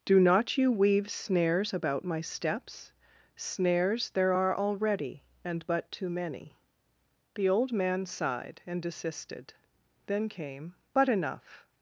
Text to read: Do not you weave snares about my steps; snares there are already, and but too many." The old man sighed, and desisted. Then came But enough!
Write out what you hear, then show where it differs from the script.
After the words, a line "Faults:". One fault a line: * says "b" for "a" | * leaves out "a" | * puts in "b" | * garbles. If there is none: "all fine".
Do not you weave snares about my steps; snares there are already, and but too many." The old man sighed, and desisted. Then came But enough!
Faults:
all fine